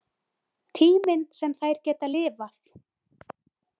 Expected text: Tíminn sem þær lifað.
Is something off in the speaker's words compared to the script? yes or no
yes